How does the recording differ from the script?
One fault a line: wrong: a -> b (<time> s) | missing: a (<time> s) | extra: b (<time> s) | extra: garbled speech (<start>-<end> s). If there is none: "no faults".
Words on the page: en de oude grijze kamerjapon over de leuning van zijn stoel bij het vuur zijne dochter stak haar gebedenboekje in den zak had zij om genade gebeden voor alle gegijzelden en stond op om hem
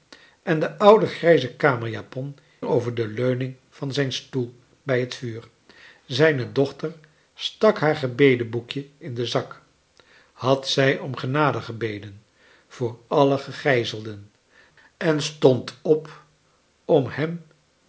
no faults